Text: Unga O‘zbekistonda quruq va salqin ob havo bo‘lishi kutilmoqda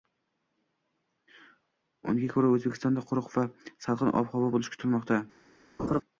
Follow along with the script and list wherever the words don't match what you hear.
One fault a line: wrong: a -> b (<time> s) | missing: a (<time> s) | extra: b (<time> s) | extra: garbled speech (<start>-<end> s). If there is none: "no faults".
extra: ko‘ra (2.3 s)